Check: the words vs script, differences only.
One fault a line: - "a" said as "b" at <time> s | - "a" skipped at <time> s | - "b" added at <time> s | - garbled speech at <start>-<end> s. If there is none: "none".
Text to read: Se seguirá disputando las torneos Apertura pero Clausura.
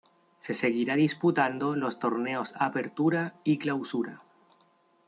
- "las" said as "los" at 1.7 s
- "pero" said as "y" at 3.4 s